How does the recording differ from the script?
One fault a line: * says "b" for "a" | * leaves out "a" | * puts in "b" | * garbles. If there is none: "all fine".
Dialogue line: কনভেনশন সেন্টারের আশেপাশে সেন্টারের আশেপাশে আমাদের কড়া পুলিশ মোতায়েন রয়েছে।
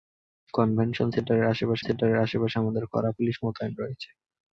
all fine